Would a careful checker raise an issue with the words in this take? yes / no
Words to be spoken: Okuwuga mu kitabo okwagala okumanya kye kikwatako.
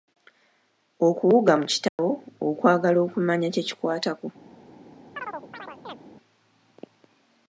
no